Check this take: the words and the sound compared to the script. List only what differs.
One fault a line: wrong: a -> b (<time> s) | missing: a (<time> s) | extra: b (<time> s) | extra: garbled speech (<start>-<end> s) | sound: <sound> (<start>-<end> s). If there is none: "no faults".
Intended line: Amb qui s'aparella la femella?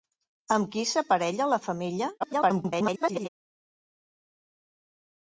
extra: garbled speech (2.2-3.3 s)